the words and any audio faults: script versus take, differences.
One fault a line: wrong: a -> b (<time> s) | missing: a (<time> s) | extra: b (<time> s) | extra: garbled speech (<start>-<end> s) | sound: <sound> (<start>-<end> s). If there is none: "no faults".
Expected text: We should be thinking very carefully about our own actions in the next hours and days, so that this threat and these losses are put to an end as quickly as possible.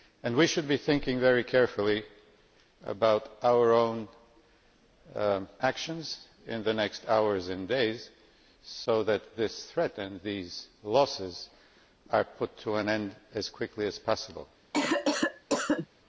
sound: cough (14.7-15.9 s)